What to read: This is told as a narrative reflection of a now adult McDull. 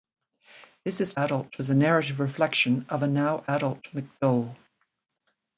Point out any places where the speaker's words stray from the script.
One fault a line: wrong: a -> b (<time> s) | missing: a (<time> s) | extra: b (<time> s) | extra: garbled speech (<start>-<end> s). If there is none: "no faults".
wrong: told -> adult (1.2 s)